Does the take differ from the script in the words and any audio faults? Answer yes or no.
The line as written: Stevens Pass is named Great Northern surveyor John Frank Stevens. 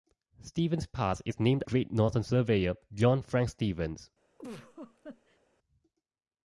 yes